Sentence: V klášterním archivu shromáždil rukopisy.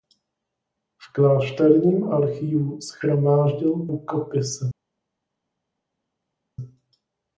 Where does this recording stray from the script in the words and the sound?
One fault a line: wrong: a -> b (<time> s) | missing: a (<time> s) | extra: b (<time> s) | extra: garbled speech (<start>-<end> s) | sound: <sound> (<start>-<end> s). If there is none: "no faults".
no faults